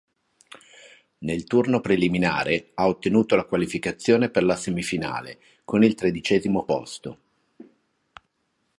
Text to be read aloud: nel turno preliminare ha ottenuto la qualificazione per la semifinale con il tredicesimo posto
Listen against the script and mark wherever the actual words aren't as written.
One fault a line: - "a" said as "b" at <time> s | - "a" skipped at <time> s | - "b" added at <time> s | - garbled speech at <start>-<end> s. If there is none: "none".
none